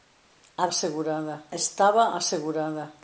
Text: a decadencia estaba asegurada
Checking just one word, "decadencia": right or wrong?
wrong